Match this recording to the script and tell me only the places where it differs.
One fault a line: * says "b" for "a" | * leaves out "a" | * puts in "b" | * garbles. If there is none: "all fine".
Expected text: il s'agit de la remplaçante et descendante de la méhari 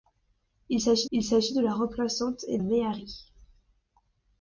* puts in "il s'agit"
* leaves out "descendante de la"